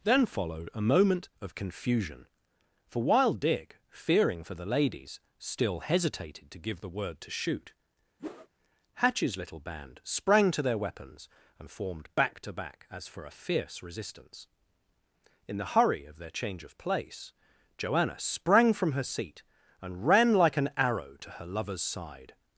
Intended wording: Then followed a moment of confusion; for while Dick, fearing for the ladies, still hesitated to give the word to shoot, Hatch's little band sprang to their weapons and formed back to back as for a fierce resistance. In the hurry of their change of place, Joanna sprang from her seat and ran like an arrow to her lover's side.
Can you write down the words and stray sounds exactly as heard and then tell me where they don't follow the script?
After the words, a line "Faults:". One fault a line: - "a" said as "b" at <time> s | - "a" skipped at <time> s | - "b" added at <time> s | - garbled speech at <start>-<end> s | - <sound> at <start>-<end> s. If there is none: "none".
Then followed a moment of confusion; for while Dick, fearing for the ladies, still hesitated to give the word to shoot, Hatch's little band sprang to their weapons and formed back to back as for a fierce resistance. In the hurry of their change of place, Joanna sprang from her seat and ran like an arrow to her lover's side.
Faults:
- whoosh at 8.2-8.5 s